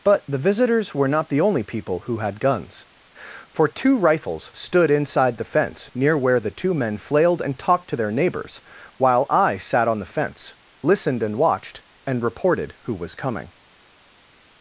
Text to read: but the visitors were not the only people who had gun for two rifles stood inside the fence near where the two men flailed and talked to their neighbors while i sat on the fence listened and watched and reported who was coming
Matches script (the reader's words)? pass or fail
fail